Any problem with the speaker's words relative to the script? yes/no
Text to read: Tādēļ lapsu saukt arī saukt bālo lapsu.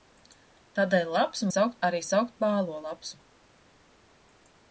no